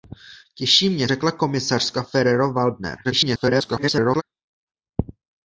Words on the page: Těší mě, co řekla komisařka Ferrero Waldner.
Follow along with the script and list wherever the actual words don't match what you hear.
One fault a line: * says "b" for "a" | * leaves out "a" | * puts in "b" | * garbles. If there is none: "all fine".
* leaves out "co"
* garbles